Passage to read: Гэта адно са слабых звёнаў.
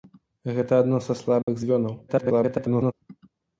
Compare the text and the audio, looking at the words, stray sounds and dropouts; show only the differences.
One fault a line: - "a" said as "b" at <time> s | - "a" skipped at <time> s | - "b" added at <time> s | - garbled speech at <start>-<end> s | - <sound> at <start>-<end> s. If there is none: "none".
- dropout at 1.4-1.5 s
- garbled speech at 2.1-2.9 s